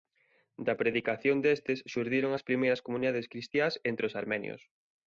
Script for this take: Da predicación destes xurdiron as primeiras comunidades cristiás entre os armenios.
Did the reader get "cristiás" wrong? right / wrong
right